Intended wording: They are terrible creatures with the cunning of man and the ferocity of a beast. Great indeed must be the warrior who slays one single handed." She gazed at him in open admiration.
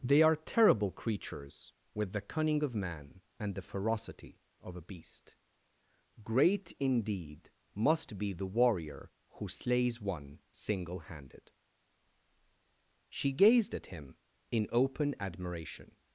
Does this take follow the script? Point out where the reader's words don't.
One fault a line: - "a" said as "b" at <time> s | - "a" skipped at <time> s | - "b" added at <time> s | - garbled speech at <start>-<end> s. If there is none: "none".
none